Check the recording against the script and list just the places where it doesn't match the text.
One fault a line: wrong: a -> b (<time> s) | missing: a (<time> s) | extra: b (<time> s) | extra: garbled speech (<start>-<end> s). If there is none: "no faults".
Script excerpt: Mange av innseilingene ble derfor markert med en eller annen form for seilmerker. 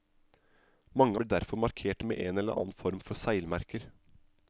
missing: av innseilingene (1.2 s)